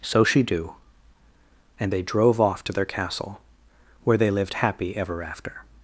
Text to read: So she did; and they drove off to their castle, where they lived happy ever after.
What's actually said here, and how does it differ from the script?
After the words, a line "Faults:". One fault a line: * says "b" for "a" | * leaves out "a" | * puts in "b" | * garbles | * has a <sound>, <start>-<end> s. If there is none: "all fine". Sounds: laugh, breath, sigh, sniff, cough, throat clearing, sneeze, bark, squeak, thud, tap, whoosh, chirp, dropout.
So she do; and they drove off to their castle, where they lived happy ever after.
Faults:
* says "do" for "did"